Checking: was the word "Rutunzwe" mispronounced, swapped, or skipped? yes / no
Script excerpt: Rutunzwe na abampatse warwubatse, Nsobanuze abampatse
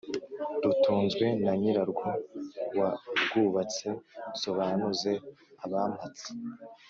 no